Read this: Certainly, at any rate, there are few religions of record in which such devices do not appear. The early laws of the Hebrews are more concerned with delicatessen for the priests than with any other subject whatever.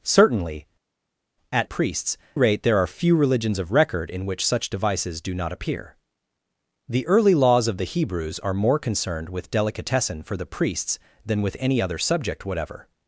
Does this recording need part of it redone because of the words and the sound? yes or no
yes